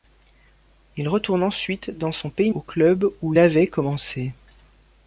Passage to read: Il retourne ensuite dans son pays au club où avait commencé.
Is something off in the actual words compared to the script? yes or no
no